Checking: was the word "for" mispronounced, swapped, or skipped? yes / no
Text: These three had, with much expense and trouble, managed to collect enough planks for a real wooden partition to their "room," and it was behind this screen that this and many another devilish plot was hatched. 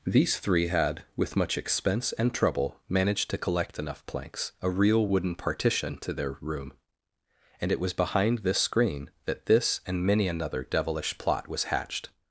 yes